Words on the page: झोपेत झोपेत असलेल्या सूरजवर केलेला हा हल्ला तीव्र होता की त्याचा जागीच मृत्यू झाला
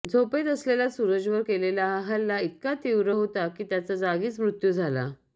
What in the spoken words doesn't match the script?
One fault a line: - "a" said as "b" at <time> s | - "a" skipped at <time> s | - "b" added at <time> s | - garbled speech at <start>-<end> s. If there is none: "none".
- "झोपेत" skipped at 0.5 s
- "इतका" added at 2.4 s